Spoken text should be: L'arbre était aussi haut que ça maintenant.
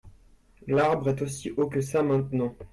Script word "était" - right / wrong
wrong